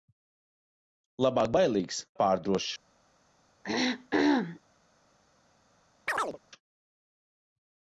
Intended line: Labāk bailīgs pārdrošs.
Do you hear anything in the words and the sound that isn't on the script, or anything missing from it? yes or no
yes